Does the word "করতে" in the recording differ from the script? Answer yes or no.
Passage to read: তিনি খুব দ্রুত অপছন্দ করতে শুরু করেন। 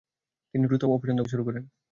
yes